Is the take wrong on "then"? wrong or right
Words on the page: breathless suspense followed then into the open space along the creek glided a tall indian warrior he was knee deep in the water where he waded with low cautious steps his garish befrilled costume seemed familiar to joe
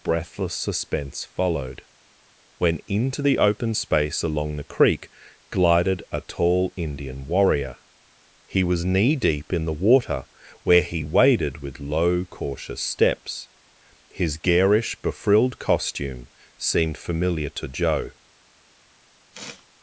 wrong